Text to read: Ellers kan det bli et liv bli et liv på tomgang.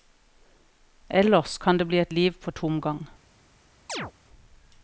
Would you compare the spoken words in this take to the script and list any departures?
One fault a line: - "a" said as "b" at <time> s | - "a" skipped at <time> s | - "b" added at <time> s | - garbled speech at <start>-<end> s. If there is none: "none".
- "bli et liv" skipped at 2.3 s